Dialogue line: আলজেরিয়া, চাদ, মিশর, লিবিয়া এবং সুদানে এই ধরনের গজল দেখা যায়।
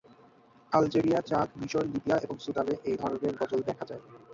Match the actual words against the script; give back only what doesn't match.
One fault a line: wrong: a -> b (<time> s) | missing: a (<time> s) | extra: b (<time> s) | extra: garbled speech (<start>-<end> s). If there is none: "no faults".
no faults